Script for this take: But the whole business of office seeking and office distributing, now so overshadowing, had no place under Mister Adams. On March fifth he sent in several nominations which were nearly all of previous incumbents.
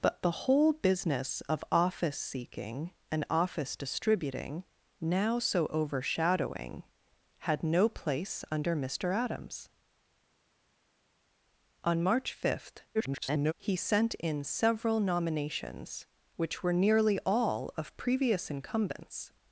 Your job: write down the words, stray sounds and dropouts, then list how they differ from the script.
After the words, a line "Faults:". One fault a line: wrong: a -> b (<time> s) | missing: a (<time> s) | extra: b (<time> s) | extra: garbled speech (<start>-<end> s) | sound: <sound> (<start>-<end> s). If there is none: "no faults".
But the whole business of office seeking and office distributing, now so overshadowing, had no place under Mister Adams. On March fifth [garbled] he sent in several nominations which were nearly all of previous incumbents.
Faults:
extra: garbled speech (12.9-13.5 s)